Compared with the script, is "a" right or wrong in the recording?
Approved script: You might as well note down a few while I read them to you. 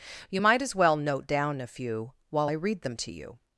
right